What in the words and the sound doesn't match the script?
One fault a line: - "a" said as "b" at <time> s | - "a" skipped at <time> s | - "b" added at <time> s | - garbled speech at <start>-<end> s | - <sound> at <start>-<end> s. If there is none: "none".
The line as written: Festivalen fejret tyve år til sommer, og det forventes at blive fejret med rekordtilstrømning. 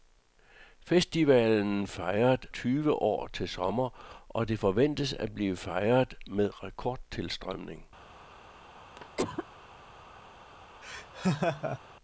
- cough at 9.0-9.5 s
- laugh at 10.8-11.8 s